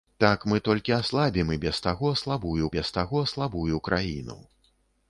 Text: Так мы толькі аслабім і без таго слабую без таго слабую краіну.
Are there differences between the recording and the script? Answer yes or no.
no